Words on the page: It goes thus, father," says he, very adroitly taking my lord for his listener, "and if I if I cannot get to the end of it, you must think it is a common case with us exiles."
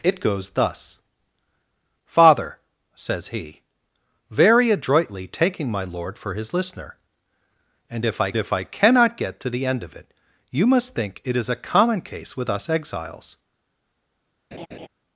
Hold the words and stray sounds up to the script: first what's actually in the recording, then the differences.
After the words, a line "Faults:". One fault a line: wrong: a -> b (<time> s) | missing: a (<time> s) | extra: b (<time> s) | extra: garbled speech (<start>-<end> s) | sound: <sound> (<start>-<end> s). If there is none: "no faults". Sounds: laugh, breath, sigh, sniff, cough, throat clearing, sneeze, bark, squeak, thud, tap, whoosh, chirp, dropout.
It goes thus, father," says he, very adroitly taking my lord for his listener, "and if I if I cannot get to the end of it, you must think it is a common case with us exiles."
Faults:
sound: laugh (14.5-14.9 s)